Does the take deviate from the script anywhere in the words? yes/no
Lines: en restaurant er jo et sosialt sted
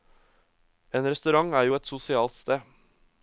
no